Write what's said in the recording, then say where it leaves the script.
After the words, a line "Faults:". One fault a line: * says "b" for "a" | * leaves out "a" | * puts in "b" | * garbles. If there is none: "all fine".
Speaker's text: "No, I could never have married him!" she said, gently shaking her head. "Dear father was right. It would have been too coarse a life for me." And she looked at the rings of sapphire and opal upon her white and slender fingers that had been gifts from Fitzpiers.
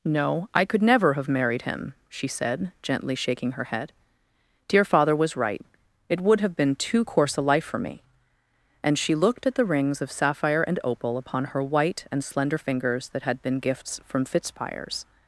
"No, I could never have married him!" she said, gently shaking her head. "Dear father was right. It would have been too coarse a life for me." And she looked at the rings of sapphire and opal upon her white and slender fingers that had been gifts from Fitzpiers.
Faults:
all fine